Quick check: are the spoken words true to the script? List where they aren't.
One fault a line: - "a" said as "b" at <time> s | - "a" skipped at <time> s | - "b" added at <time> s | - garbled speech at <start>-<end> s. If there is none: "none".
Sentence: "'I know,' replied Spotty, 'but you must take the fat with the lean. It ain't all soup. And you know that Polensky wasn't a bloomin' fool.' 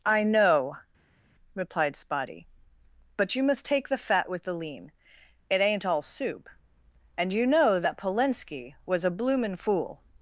- "wasn't" said as "was" at 8.8 s